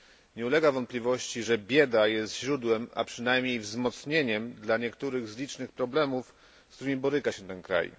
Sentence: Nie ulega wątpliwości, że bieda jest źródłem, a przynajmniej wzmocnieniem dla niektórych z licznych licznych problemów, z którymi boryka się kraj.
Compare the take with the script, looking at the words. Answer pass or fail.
fail